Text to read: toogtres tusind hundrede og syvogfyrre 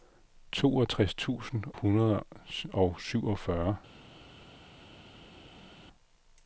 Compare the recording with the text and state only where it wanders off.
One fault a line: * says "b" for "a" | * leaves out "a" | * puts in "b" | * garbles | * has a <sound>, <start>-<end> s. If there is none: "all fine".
all fine